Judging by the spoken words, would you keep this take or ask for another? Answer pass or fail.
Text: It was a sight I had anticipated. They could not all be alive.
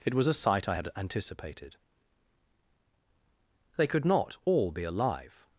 pass